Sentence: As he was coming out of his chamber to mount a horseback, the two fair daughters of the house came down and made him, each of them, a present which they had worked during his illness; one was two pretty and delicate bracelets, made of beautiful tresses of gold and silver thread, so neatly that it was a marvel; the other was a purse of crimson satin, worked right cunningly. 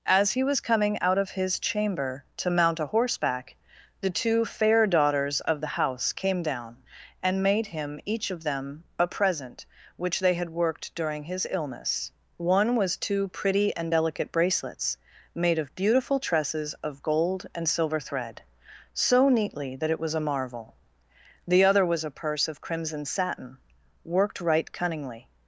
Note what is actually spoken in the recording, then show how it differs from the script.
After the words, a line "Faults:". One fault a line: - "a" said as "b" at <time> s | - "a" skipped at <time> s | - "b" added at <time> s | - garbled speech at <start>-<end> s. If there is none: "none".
As he was coming out of his chamber to mount a horseback, the two fair daughters of the house came down and made him, each of them, a present which they had worked during his illness; one was two pretty and delicate bracelets, made of beautiful tresses of gold and silver thread, so neatly that it was a marvel; the other was a purse of crimson satin, worked right cunningly.
Faults:
none